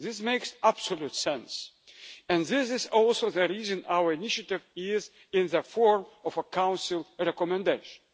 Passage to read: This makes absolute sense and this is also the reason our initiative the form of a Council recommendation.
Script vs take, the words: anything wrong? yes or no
yes